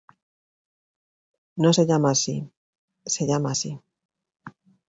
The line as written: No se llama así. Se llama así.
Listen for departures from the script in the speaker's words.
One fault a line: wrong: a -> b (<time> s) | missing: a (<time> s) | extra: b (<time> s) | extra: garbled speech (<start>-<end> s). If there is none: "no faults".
no faults